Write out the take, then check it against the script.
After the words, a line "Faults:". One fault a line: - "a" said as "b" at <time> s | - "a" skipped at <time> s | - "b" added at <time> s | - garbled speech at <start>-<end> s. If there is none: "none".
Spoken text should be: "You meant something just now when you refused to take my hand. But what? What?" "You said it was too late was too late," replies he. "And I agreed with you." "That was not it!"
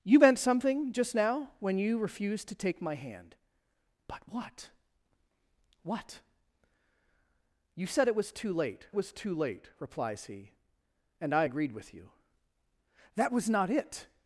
"You meant something just now when you refused to take my hand. But what? What?" "You said it was too late was too late," replies he. "And I agreed with you." "That was not it!"
Faults:
none